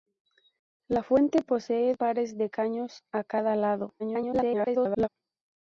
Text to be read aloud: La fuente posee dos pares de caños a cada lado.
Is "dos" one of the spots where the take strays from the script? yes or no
yes